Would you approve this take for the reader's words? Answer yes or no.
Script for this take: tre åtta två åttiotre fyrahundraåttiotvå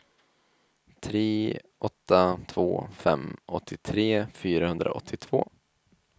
no